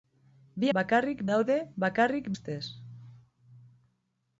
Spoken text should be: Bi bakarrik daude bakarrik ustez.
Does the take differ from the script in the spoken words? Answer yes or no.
no